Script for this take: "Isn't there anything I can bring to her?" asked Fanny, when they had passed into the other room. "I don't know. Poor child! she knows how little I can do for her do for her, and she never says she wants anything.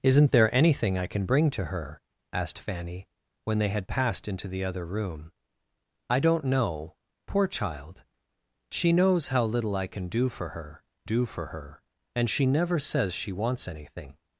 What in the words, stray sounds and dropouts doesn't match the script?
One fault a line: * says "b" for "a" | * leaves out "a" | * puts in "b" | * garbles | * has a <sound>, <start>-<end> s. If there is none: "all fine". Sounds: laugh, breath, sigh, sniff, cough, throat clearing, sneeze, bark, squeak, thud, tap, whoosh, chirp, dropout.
all fine